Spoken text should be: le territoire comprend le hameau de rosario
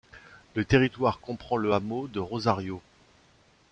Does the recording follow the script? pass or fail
pass